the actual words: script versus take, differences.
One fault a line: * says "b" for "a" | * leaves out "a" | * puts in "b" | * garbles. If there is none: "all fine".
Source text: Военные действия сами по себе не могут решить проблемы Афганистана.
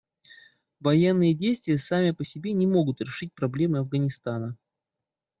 all fine